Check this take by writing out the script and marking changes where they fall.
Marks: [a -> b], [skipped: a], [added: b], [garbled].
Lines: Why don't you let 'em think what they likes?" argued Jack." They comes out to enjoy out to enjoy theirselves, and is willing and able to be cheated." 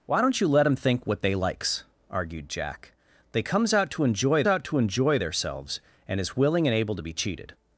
Why don't you let 'em think what they likes?" argued Jack." They comes out to enjoy out to enjoy theirselves, and is willing and able to be cheated."